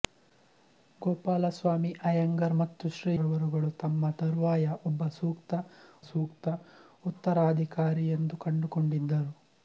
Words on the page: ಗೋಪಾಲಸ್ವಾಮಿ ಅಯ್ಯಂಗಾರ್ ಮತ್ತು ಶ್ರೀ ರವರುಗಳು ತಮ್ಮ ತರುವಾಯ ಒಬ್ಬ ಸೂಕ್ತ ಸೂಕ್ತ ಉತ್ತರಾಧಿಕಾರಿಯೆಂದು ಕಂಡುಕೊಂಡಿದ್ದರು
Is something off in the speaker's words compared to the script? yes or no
no